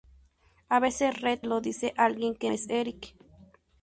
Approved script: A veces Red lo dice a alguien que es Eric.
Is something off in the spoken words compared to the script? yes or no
no